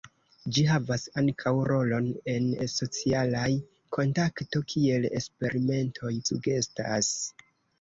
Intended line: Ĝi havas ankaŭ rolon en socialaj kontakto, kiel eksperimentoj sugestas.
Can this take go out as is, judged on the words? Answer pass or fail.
pass